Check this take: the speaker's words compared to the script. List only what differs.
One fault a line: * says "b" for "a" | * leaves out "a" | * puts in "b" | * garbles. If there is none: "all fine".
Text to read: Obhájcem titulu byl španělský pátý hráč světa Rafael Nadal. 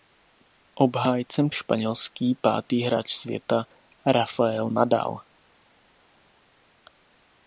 * leaves out "titulu byl"